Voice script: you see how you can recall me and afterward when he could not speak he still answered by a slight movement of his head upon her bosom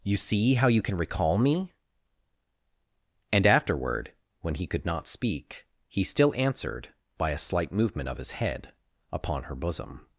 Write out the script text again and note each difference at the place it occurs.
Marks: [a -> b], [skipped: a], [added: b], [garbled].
you see how you can recall me and afterward when he could not speak he still answered by a slight movement of his head upon her bosom